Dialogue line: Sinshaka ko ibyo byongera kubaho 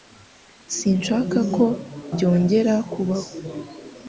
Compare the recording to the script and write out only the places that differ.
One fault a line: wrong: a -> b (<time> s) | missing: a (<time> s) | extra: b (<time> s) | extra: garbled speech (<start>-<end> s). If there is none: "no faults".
missing: ibyo (1.6 s)